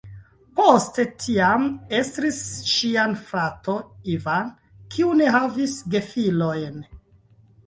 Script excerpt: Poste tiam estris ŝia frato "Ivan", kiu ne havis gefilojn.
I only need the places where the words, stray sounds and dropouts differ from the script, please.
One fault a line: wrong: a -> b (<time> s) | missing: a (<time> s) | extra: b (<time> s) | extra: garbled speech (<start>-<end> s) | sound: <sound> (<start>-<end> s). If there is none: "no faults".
no faults